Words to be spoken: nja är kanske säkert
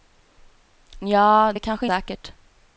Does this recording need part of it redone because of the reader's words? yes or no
no